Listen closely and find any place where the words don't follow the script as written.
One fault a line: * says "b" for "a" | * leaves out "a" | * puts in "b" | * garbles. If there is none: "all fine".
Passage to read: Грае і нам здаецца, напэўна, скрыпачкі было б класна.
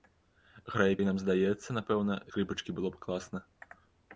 all fine